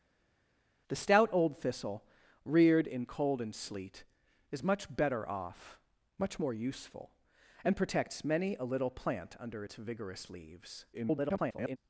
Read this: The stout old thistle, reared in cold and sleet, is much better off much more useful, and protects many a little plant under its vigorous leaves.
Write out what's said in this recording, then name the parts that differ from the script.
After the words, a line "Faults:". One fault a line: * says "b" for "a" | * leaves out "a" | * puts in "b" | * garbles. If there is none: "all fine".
The stout old thistle, reared in cold and sleet, is much better off much more useful, and protects many a little plant under its vigorous leaves. [garbled]
Faults:
* garbles